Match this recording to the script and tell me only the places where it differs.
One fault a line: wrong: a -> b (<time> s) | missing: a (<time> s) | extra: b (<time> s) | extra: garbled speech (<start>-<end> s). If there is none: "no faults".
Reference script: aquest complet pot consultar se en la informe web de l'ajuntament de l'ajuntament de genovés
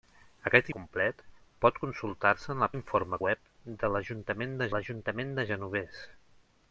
no faults